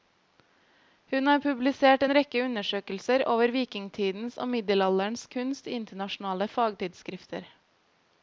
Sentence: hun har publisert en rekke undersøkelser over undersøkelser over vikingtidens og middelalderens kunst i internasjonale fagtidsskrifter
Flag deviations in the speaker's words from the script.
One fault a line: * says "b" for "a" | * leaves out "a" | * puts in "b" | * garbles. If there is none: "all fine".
* leaves out "undersøkelser over"